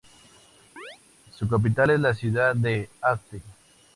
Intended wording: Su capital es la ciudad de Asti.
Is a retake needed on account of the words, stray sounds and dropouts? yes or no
yes